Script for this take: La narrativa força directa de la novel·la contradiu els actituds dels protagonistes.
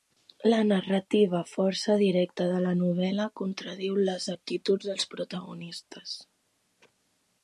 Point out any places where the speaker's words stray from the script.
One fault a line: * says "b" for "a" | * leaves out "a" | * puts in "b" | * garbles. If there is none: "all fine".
* says "les" for "els"